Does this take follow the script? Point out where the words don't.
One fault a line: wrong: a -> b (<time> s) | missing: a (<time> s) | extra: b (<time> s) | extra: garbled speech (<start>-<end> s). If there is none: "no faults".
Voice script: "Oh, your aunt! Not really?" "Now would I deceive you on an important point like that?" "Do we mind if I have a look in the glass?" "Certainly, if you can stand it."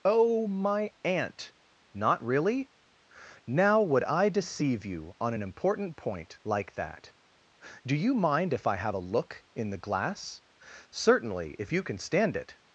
wrong: your -> my (0.5 s)
wrong: we -> you (8.0 s)